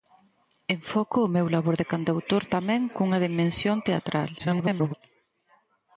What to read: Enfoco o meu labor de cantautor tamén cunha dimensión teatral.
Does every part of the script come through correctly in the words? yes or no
no